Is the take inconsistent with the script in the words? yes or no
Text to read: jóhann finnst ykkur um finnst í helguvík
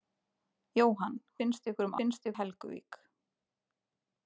no